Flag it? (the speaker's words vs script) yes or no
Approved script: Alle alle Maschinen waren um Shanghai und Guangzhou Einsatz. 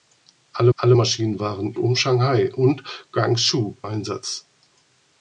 no